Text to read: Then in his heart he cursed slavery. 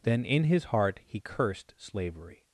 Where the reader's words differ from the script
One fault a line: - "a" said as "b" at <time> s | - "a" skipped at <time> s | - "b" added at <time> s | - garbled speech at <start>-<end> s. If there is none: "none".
none